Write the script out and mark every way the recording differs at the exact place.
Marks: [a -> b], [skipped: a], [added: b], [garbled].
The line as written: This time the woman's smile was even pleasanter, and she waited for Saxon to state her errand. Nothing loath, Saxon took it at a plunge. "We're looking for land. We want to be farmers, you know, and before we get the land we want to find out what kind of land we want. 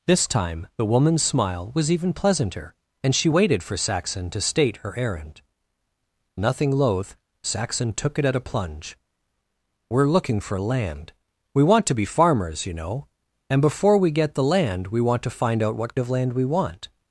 This time the woman's smile was even pleasanter, and she waited for Saxon to state her errand. Nothing loath, Saxon took it at a plunge. "We're looking for land. We want to be farmers, you know, and before we get the land we want to find out what [skipped: kind] of land we want.